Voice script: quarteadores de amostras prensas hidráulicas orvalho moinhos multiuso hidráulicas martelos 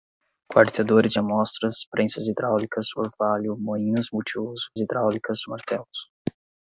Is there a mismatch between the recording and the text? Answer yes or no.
no